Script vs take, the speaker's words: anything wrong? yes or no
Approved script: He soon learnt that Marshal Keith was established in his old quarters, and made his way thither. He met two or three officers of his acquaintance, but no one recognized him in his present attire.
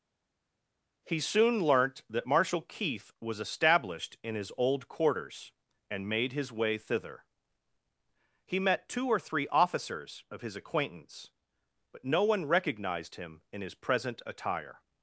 no